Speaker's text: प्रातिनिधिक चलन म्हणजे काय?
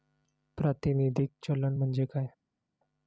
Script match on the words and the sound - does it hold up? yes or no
yes